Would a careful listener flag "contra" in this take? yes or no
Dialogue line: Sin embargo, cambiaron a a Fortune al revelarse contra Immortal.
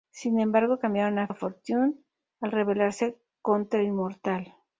no